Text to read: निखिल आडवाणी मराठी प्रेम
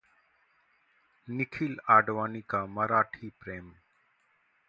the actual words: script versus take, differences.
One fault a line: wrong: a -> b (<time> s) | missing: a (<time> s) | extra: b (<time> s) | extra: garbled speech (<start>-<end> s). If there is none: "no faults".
extra: का (2.5 s)